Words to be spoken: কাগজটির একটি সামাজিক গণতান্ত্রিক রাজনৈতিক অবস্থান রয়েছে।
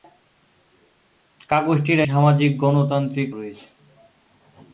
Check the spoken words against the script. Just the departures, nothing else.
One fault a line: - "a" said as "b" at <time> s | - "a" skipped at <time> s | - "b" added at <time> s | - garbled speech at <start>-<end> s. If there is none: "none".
- "একটি" skipped at 2.0 s
- "রাজনৈতিক অবস্থান" skipped at 3.3 s